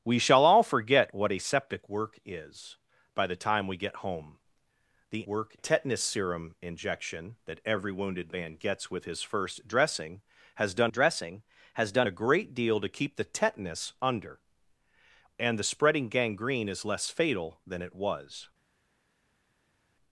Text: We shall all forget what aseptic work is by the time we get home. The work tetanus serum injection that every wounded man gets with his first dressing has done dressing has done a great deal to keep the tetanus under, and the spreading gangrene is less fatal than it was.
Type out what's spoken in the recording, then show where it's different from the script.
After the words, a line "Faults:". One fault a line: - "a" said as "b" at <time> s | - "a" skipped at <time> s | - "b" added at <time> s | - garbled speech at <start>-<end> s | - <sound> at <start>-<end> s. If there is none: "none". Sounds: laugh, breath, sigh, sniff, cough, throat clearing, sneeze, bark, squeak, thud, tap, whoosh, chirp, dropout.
We shall all forget what aseptic work is by the time we get home. The work tetanus serum injection that every wounded man gets with his first dressing has done dressing has done a great deal to keep the tetanus under, and the spreading gangrene is less fatal than it was.
Faults:
none